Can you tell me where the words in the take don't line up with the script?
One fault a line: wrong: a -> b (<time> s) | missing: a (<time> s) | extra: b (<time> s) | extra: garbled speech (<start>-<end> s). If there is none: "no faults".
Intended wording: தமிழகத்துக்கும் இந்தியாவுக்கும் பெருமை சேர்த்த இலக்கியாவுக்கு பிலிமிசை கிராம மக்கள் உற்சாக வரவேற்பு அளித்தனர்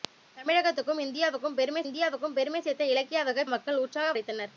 extra: இந்தியாவுக்கும் பெருமை (1.8 s)
missing: பிலிமிசை கிராம (3.4 s)
missing: வரவேற்பு (4.2 s)